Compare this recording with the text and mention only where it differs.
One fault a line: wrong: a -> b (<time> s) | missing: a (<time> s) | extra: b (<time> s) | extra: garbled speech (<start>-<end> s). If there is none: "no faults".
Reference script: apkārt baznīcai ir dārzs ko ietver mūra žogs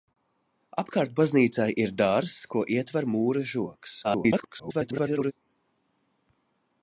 extra: garbled speech (4.0-5.3 s)